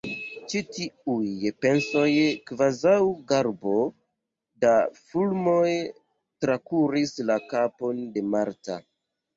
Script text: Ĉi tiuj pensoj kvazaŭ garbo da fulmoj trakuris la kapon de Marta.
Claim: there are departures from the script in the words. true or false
false